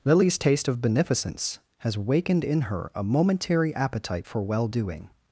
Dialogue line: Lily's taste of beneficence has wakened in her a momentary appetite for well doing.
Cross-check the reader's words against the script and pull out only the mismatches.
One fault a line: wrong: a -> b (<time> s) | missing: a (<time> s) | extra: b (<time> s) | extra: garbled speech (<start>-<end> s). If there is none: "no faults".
no faults